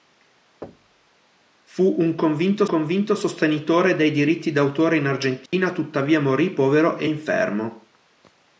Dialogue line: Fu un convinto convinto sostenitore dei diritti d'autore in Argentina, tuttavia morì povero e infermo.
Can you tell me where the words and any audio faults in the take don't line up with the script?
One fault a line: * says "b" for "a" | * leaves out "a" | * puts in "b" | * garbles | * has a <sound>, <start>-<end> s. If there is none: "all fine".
* has a thud, 0.6-1.1 s
* has a dropout, 5.5-5.5 s